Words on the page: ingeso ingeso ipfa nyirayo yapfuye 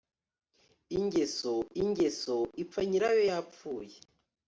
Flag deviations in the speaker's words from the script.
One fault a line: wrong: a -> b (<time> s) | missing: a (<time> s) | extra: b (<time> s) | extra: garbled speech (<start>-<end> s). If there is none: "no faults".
no faults